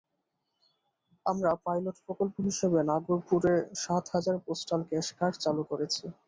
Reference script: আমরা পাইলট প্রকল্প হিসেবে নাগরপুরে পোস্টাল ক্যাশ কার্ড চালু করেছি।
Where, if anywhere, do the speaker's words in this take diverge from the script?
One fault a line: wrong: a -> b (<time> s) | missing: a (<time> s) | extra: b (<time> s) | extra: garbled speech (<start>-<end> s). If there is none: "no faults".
extra: সাত হাজার (3.8 s)